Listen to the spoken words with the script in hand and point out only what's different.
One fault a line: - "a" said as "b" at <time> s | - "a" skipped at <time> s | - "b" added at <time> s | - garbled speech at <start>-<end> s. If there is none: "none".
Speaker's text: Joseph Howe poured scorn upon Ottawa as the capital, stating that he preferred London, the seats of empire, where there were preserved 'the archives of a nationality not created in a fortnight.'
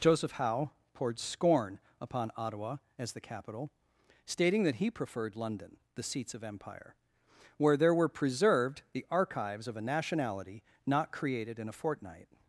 none